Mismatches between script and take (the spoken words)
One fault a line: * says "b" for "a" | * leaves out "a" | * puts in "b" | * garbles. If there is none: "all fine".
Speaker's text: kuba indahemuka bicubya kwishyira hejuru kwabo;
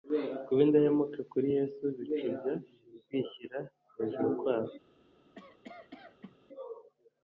* puts in "kuri Yesu"